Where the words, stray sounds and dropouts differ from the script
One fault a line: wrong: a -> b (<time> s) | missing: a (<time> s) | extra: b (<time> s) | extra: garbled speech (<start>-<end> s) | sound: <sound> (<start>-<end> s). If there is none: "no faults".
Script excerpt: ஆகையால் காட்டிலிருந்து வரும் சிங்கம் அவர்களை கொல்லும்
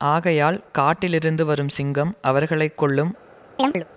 sound: chirp (3.6-3.9 s)